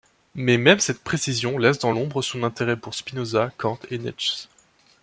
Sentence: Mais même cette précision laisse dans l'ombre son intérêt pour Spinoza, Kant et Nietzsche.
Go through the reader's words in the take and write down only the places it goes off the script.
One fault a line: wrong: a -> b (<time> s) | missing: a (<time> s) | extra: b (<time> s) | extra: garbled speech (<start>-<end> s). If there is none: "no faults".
no faults